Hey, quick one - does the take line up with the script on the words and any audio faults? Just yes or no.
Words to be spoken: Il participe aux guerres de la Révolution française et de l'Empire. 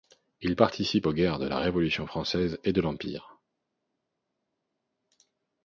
yes